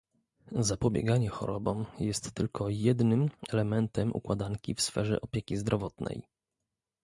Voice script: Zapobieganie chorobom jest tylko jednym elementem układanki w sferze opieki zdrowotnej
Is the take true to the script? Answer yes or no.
yes